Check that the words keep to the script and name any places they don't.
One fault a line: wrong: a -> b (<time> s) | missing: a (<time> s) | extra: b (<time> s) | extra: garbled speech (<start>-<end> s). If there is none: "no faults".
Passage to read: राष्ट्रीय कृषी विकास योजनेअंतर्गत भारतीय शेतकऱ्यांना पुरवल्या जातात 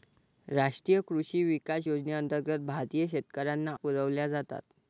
no faults